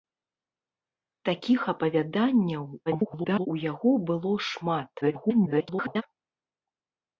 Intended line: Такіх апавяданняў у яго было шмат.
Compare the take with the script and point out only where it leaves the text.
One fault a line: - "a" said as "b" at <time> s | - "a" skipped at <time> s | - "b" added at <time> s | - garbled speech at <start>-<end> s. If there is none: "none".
- garbled speech at 2.9-3.5 s
- garbled speech at 5.0-6.0 s